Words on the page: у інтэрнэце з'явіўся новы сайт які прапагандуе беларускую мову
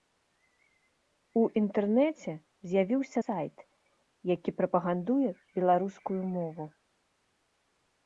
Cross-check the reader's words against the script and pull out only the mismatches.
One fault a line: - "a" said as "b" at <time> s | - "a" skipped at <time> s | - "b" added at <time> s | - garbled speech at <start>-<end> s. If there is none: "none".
- "новы" skipped at 3.2 s